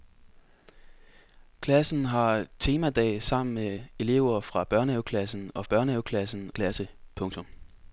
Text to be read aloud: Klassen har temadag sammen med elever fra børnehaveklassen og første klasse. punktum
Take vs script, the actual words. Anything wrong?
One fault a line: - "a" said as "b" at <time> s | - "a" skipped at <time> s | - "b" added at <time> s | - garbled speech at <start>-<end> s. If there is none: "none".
- "første" said as "børnehaveklassen" at 5.6 s